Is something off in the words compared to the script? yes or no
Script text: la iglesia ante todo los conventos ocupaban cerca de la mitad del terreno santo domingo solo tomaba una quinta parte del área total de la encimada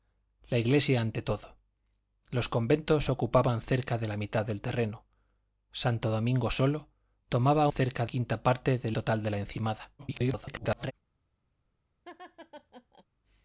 yes